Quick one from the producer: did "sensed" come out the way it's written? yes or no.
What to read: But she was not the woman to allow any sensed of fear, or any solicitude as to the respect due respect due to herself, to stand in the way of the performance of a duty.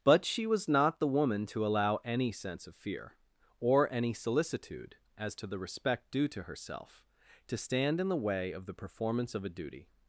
no